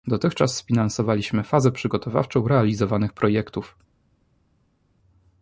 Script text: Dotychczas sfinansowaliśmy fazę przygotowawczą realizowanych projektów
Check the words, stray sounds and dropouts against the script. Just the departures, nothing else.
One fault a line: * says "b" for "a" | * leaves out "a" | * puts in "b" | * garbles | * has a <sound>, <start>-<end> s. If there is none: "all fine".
all fine